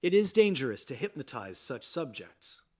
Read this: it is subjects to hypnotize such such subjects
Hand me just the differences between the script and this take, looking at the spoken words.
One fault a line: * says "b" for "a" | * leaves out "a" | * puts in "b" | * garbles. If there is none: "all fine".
* says "dangerous" for "subjects"
* leaves out "such"